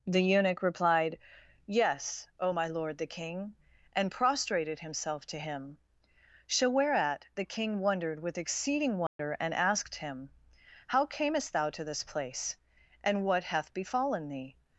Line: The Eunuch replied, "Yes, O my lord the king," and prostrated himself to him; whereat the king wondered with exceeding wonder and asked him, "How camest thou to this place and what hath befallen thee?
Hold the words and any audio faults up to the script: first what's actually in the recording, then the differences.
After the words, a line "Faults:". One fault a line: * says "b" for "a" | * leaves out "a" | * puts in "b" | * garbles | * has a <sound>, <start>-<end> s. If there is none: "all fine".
The Eunuch replied, "Yes, O my lord the king," and prostrated himself to him; so whereat the king wondered with exceeding wonder and asked him, "How camest thou to this place and what hath befallen thee?
Faults:
* puts in "so"
* has a dropout, 9.1-9.2 s